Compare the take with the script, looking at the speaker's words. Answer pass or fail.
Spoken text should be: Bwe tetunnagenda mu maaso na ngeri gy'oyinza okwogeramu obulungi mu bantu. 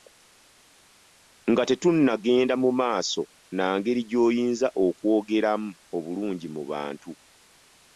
fail